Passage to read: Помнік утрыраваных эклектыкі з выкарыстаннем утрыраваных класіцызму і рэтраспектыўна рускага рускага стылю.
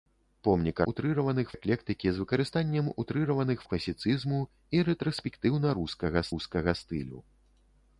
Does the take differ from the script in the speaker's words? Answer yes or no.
no